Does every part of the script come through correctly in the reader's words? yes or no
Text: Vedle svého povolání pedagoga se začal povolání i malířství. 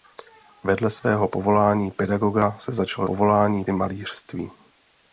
yes